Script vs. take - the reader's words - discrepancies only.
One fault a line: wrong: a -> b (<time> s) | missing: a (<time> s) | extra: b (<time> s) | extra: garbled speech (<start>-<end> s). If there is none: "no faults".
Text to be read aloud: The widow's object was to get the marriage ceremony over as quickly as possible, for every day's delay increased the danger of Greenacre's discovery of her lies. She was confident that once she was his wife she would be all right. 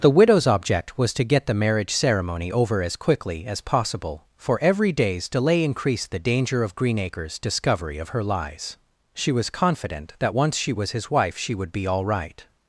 no faults